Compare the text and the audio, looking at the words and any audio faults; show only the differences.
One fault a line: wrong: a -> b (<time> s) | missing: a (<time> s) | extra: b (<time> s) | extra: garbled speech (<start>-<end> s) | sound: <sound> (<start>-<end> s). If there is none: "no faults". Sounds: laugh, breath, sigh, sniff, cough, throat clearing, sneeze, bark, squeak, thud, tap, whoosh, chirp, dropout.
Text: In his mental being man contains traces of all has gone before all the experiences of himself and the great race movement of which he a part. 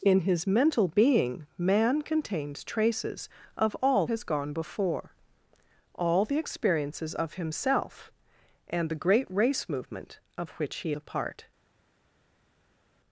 no faults